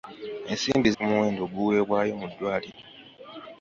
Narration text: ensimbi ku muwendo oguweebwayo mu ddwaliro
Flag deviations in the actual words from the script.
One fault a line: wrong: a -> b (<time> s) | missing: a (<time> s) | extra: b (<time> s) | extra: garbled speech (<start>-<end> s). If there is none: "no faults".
no faults